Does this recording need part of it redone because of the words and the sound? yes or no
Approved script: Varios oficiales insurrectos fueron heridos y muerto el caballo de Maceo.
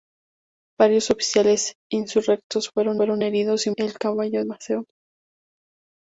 yes